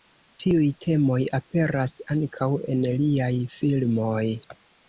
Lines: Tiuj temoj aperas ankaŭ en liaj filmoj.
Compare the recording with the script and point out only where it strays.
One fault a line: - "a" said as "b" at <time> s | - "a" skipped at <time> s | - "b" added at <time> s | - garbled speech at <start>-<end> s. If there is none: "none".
none